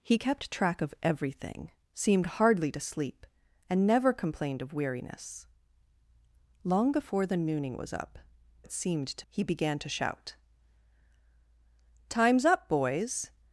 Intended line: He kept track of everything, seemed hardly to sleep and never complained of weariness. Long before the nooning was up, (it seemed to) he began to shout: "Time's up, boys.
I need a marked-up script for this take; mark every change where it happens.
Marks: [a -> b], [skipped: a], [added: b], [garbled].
He kept track of everything, seemed hardly to sleep and never complained of weariness. Long before the nooning was up, (it seemed to) he began to shout: "Time's up, boys.